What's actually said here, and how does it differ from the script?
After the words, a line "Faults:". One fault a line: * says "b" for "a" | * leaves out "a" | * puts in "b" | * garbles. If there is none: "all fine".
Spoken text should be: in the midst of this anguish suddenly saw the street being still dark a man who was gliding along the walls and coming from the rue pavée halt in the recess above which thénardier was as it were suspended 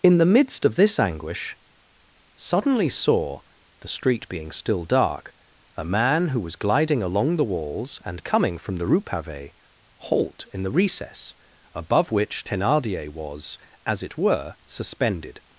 in the midst of this anguish suddenly saw the street being still dark a man who was gliding along the walls and coming from the rue pavée halt in the recess above which thénardier was as it were suspended
Faults:
all fine